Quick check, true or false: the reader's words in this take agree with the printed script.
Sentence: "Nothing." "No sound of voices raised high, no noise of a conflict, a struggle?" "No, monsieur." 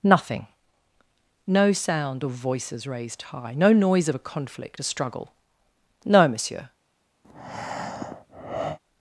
true